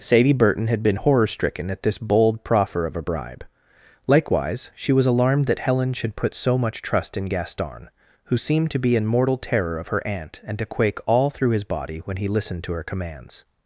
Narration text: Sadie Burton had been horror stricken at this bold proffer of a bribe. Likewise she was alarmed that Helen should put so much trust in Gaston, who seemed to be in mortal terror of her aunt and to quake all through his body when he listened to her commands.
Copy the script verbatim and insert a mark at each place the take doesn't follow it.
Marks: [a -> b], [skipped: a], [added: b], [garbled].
Sadie Burton had been horror stricken at this bold proffer of a bribe. Likewise she was alarmed that Helen should put so much trust in Gaston, who seemed to be in mortal terror of her aunt and to quake all through his body when he listened to her commands.